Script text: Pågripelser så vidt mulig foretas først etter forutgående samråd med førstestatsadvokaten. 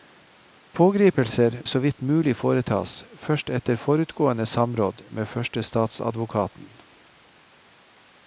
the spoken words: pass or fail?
pass